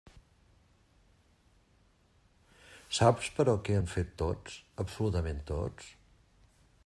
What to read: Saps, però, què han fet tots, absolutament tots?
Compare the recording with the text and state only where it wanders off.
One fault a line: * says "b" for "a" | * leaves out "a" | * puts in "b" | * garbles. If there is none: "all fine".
all fine